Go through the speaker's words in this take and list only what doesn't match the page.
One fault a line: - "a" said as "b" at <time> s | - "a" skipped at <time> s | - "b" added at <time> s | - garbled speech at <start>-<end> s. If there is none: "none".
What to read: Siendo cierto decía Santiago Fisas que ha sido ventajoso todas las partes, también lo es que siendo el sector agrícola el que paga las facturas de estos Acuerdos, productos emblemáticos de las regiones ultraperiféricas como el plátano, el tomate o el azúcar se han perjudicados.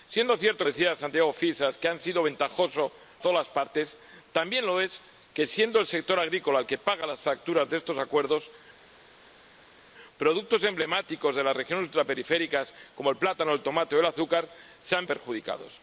none